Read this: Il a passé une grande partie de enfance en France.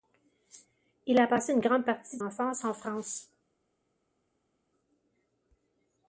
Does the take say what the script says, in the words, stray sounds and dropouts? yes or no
yes